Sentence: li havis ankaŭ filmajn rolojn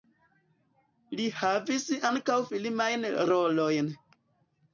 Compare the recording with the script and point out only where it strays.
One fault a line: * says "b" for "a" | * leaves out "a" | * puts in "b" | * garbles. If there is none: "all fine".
all fine